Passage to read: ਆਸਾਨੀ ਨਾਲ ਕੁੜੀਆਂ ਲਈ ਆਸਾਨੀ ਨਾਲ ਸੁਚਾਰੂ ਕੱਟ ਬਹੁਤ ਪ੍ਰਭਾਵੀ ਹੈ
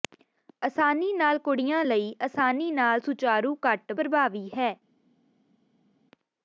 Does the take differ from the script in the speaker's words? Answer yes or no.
yes